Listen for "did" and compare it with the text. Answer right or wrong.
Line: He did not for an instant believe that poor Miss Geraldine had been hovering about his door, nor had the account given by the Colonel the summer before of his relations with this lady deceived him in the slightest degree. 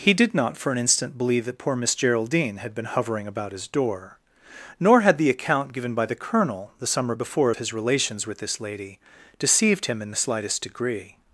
right